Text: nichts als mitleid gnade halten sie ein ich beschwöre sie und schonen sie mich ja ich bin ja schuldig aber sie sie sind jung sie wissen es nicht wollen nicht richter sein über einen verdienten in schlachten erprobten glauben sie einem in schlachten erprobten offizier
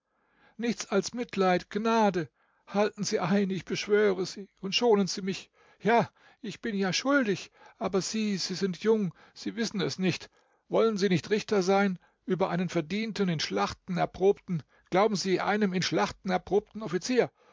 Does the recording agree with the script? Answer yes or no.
no